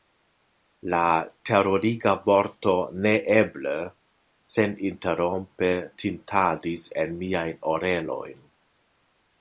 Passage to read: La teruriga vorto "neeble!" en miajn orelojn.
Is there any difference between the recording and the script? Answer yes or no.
yes